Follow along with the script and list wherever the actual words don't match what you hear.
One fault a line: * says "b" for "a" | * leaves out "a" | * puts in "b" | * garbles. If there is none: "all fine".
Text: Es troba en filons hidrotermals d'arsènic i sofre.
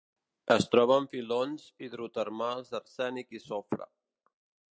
all fine